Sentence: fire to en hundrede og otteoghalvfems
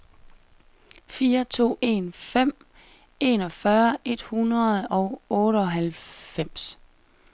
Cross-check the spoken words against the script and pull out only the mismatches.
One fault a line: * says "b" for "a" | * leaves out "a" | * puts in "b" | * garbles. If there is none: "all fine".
* puts in "fem enogfyrre et"